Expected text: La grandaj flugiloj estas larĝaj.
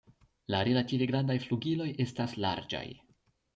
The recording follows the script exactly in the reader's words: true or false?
false